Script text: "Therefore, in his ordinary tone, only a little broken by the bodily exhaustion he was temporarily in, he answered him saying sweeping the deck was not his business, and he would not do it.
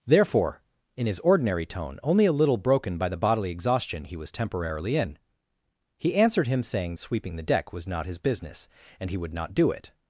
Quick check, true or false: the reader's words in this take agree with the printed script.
true